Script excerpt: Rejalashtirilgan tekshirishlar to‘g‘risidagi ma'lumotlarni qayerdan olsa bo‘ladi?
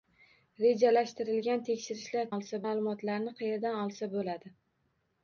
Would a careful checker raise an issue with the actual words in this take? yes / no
yes